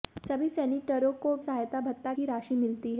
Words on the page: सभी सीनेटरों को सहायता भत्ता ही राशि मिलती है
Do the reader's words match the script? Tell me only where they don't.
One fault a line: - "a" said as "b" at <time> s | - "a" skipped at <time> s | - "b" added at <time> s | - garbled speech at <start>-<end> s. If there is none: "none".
none